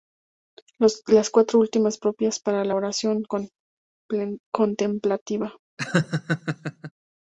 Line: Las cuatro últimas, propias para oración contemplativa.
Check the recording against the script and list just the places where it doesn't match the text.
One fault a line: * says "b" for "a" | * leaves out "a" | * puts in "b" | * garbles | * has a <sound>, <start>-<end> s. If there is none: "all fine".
* puts in "la"
* has a laugh, 5.8-6.9 s